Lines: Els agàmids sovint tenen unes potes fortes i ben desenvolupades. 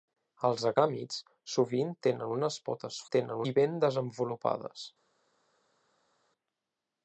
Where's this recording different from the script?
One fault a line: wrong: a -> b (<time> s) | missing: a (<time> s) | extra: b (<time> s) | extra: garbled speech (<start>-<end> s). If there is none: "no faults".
wrong: fortes -> tenen (3.2 s)